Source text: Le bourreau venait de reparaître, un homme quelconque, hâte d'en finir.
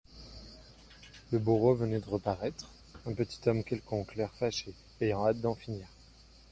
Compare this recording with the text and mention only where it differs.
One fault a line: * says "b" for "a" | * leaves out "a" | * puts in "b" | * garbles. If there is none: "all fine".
* puts in "petit"
* puts in "l'air fâché ayant"